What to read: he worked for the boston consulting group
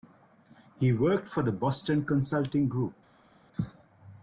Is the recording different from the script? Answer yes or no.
no